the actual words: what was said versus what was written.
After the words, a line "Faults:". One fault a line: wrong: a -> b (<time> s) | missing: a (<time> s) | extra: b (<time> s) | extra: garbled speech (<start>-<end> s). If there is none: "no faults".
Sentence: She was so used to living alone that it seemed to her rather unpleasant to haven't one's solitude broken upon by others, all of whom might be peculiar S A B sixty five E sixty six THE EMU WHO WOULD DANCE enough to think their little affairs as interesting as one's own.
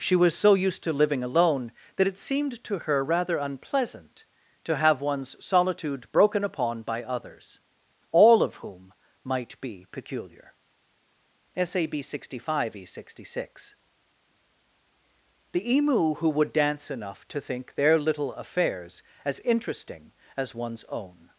She was so used to living alone that it seemed to her rather unpleasant to have one's solitude broken upon by others, all of whom might be peculiar S A B sixty five E sixty six THE EMU WHO WOULD DANCE enough to think their little affairs as interesting as one's own.
Faults:
wrong: haven't -> have (4.8 s)